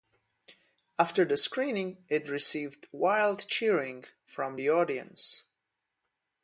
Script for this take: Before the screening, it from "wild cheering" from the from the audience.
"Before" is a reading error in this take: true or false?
true